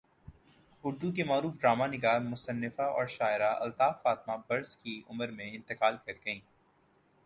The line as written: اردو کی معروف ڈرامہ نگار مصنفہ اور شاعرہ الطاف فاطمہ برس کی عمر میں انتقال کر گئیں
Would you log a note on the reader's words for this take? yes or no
no